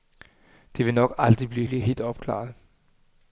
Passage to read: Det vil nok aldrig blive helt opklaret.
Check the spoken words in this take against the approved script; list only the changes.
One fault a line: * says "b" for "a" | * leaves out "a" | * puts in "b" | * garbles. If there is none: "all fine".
* puts in "blive"